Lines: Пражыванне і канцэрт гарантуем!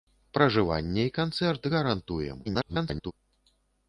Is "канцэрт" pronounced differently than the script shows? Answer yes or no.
no